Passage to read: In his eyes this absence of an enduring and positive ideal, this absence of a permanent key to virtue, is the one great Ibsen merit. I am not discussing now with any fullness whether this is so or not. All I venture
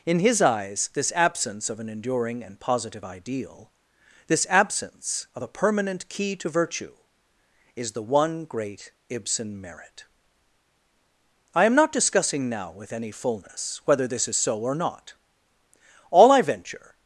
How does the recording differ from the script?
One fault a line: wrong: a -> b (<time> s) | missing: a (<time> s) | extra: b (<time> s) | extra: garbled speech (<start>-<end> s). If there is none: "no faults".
no faults